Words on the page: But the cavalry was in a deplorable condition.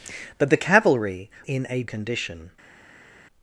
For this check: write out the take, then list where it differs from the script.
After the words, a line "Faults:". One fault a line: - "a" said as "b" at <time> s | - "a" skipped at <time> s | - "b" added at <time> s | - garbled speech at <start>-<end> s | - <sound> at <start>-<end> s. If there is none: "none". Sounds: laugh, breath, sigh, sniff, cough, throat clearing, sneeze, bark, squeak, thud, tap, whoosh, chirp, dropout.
But the cavalry in a condition.
Faults:
- "was" skipped at 1.3 s
- "deplorable" skipped at 1.8 s